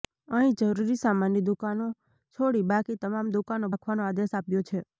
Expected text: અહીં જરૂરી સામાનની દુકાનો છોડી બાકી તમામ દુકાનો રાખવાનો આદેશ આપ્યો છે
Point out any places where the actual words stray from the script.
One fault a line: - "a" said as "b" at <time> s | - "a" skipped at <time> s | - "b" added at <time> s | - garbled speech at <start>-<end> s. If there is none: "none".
none